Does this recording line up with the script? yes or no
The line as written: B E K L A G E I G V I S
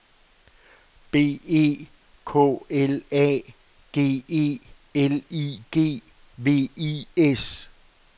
no